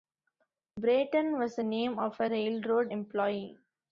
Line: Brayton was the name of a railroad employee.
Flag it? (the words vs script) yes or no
no